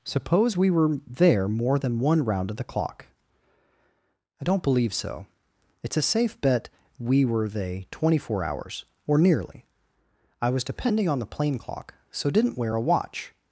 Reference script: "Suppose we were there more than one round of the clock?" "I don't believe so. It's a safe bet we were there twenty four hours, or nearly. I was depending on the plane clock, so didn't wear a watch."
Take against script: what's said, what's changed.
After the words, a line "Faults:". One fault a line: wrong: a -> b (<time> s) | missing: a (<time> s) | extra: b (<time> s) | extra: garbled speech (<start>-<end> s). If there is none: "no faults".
"Suppose we were there more than one round of the clock?" "I don't believe so. It's a safe bet we were they twenty four hours, or nearly. I was depending on the plane clock, so didn't wear a watch."
Faults:
wrong: there -> they (7.5 s)